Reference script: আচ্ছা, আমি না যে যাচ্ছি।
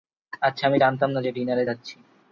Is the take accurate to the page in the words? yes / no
no